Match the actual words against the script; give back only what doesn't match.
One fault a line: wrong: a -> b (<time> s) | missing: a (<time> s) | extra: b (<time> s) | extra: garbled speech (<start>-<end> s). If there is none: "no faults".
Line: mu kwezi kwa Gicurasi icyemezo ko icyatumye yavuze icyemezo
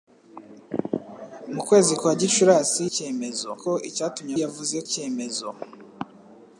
no faults